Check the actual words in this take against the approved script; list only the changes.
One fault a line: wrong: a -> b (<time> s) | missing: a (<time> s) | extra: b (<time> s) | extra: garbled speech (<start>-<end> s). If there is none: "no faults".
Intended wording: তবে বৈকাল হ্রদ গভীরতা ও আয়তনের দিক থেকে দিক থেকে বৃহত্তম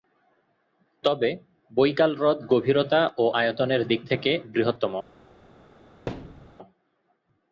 missing: দিক থেকে (4.3 s)